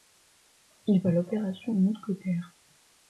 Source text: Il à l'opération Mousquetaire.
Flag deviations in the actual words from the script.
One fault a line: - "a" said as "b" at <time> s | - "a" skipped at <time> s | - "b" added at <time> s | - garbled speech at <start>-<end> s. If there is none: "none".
none